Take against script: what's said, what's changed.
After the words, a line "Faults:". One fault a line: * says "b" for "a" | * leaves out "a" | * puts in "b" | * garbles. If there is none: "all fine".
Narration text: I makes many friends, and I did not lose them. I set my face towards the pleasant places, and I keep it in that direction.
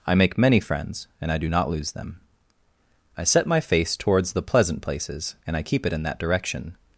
I make many friends, and I do not lose them. I set my face towards the pleasant places, and I keep it in that direction.
Faults:
* says "make" for "makes"
* says "do" for "did"